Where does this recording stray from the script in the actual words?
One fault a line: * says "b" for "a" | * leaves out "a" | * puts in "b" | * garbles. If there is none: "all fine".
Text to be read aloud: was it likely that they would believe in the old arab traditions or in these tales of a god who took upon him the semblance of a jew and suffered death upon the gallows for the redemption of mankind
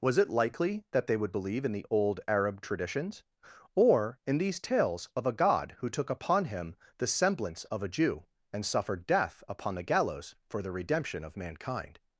all fine